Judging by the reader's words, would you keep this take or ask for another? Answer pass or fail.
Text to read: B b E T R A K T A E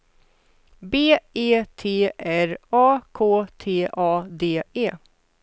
fail